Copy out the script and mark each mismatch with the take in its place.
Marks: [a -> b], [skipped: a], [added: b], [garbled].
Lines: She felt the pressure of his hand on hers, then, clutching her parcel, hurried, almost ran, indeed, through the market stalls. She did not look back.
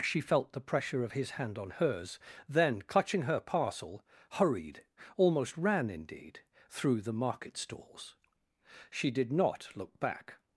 She felt the pressure of his hand on hers, then, clutching her parcel, hurried, almost ran, indeed, through the market stalls. She did not look back.